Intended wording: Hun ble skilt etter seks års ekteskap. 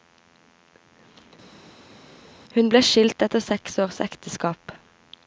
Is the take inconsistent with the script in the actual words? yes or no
no